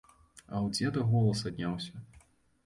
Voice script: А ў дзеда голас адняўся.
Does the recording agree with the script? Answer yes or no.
yes